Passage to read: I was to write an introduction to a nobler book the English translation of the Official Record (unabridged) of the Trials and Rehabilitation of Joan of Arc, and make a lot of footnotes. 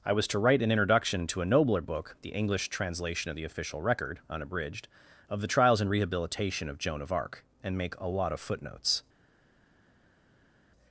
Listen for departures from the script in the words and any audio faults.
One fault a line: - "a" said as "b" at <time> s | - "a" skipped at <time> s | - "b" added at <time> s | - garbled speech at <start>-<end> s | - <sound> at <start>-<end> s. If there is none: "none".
none